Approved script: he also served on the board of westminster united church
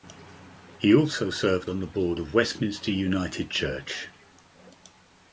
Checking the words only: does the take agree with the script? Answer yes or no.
yes